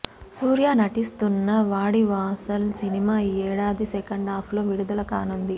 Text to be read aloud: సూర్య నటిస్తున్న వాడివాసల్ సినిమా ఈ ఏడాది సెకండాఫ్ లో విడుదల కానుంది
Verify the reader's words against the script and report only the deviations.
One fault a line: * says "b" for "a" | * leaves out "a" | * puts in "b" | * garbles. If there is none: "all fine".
all fine